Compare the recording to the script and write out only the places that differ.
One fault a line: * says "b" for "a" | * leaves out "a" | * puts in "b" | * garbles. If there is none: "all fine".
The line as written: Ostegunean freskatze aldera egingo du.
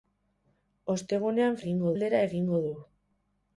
* says "egingo" for "freskatze"